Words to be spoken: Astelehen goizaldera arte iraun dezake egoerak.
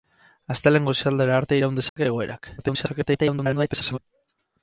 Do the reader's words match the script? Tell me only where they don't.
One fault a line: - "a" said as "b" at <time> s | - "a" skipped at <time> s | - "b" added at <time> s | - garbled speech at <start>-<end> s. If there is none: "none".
- garbled speech at 2.6-4.0 s